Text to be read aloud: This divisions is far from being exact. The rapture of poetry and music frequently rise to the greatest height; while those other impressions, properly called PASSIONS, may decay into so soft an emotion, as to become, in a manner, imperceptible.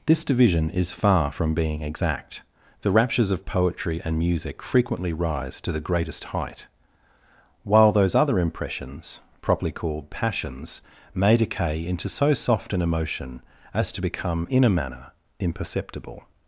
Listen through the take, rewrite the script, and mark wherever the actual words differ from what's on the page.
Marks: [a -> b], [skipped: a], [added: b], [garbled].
This [divisions -> division] is far from being exact. The [rapture -> raptures] of poetry and music frequently rise to the greatest height; while those other impressions, properly called PASSIONS, may decay into so soft an emotion, as to become, in a manner, imperceptible.